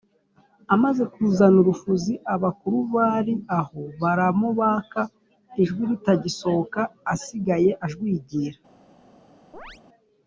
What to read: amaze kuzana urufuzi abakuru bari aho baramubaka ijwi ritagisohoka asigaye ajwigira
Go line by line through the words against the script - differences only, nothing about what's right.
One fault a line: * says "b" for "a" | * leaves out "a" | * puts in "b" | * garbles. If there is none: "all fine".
all fine